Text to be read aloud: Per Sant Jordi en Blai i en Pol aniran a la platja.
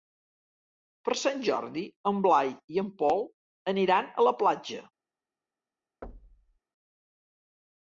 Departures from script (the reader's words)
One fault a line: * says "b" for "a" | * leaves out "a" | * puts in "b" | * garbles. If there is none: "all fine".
all fine